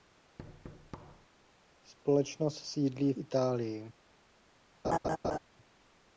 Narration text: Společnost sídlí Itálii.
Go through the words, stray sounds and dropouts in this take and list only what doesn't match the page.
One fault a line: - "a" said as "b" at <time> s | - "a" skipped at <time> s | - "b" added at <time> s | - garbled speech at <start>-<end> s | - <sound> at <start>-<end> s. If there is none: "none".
- thud at 0.4-1.3 s
- laugh at 4.8-5.4 s